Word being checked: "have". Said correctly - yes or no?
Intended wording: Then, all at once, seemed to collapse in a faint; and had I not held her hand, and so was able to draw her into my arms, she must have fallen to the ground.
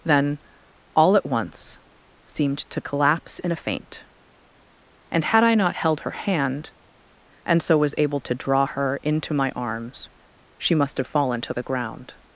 yes